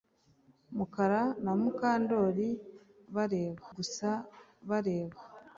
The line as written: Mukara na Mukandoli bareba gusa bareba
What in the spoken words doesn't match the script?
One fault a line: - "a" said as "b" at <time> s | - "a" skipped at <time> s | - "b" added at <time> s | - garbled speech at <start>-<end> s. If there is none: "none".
none